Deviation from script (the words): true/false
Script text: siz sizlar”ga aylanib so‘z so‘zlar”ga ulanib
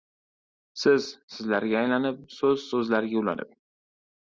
false